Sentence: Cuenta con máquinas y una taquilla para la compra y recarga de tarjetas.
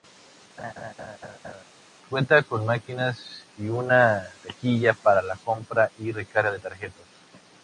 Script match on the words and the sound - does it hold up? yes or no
no